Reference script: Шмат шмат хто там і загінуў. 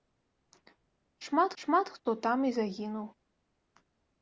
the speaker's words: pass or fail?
pass